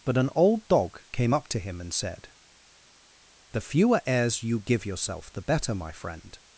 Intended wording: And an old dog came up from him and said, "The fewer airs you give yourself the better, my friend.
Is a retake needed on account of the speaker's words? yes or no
yes